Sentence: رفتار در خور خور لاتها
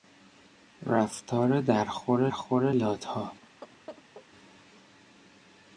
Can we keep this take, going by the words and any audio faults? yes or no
no